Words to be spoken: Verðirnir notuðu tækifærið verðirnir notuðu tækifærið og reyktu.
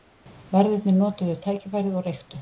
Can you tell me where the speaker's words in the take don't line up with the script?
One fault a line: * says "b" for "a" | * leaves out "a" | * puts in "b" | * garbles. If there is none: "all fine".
* leaves out "verðirnir notuðu tækifærið"